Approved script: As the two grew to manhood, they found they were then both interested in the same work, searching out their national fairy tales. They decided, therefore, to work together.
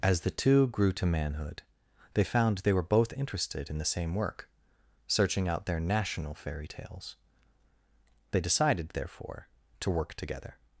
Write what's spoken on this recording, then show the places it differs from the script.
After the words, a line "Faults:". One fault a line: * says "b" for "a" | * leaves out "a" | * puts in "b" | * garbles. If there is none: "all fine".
As the two grew to manhood, they found they were both interested in the same work, searching out their national fairy tales. They decided, therefore, to work together.
Faults:
* leaves out "then"